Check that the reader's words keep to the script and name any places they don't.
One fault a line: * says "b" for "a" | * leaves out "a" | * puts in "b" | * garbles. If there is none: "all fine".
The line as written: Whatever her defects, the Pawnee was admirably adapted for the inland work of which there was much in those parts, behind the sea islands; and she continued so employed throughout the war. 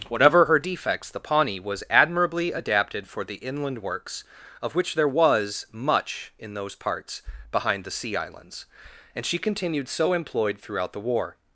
* says "works" for "work"